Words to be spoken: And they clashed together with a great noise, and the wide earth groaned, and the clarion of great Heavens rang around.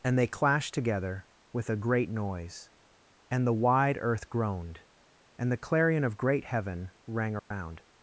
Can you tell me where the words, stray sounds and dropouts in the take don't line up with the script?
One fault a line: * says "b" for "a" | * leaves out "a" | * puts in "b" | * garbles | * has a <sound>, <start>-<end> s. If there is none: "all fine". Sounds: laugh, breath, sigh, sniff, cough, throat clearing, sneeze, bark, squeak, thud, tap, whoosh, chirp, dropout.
* says "Heaven" for "Heavens"
* has a dropout, 7.4-7.5 s